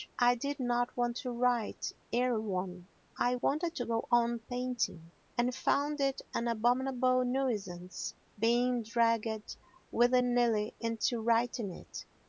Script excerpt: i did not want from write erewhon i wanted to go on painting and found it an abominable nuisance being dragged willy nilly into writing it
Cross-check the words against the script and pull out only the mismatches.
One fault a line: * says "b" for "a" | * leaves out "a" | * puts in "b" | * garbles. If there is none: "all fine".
* says "to" for "from"